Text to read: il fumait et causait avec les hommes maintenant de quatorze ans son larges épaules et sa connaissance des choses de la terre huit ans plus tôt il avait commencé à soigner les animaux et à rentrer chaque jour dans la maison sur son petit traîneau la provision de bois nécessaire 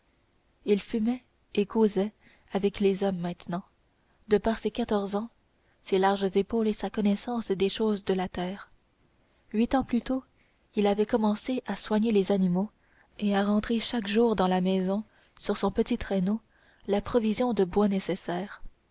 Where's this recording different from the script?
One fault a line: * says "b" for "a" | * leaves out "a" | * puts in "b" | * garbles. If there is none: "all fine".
* puts in "par ses"
* says "ses" for "son"